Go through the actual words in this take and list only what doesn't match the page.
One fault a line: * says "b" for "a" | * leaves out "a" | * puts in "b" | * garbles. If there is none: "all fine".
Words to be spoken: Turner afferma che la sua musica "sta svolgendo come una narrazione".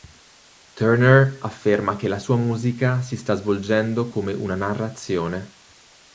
* puts in "si"